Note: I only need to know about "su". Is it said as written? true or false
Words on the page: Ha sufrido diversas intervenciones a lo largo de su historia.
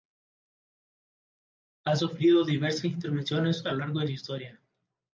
true